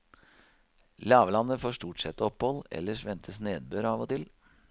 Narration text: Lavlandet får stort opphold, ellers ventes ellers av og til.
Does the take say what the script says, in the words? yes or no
no